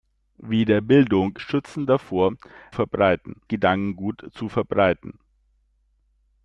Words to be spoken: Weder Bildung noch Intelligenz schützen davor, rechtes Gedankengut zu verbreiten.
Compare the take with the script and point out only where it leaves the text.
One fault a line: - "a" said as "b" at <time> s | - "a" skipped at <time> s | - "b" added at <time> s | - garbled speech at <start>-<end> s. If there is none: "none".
- "noch Intelligenz" skipped at 1.4 s
- "rechtes" said as "verbreiten" at 2.7 s